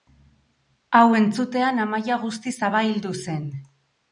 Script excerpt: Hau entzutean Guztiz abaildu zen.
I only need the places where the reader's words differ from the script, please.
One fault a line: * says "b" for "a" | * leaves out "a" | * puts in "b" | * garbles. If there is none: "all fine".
* puts in "Amaia"